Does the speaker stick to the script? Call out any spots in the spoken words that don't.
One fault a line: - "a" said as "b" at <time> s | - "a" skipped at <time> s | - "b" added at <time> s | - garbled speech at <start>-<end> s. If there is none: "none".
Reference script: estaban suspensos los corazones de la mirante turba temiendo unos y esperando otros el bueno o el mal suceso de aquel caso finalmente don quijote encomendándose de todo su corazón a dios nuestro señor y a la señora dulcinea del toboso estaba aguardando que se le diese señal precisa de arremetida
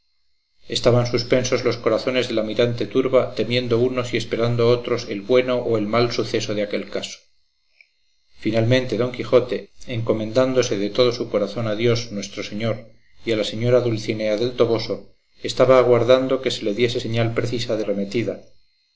none